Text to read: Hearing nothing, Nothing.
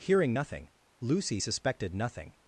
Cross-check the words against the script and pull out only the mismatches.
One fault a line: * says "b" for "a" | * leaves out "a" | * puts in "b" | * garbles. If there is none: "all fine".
* puts in "Lucy suspected"